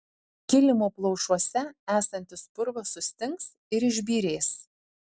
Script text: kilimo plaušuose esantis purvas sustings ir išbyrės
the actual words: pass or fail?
pass